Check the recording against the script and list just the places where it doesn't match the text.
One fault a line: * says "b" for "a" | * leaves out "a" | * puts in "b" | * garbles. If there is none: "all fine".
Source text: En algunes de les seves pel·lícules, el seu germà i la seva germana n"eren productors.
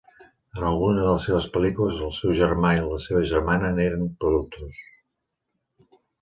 all fine